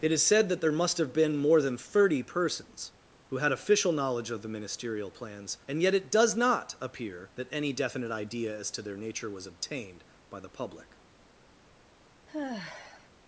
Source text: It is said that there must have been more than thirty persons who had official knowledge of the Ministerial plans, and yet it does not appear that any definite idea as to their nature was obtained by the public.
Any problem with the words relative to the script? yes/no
no